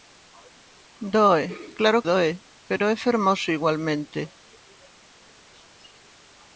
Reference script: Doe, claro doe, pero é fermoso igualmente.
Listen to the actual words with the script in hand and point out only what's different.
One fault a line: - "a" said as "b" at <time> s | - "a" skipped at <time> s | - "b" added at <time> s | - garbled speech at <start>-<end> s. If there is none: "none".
none